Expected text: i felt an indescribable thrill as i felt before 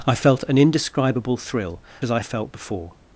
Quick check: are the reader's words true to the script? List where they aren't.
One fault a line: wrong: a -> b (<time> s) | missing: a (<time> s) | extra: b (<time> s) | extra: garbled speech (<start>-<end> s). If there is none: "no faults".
no faults